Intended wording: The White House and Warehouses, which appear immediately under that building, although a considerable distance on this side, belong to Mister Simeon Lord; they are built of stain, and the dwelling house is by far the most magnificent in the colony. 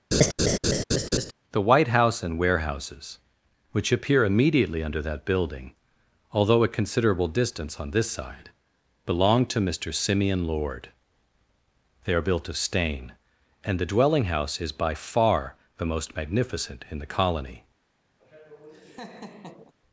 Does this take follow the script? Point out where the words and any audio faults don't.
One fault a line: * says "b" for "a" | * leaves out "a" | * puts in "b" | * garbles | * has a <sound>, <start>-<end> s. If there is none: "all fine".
* has a laugh, 0.1-1.3 s
* has a laugh, 18.2-19.7 s